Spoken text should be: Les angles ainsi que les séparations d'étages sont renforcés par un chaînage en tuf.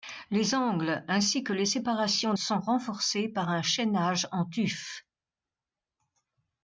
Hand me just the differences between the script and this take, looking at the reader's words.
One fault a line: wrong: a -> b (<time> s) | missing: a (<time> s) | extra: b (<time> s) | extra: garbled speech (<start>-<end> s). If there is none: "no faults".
missing: d'étages (2.3 s)